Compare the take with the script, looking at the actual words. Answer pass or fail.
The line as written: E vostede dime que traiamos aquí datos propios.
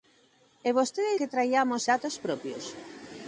fail